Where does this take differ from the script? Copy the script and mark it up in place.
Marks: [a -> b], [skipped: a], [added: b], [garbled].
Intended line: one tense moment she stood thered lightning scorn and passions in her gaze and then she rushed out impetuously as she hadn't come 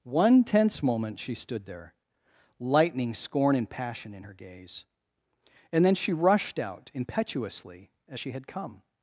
one tense moment she stood [thered -> there] lightning scorn and [passions -> passion] in her gaze and then she rushed out impetuously as she [hadn't -> had] come